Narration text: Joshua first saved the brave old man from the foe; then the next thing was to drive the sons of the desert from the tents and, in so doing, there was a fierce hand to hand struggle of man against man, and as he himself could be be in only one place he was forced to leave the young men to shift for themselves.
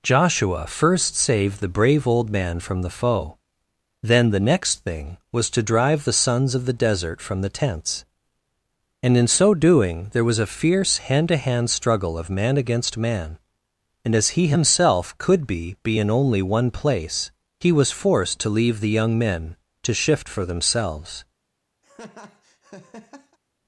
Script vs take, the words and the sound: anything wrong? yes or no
yes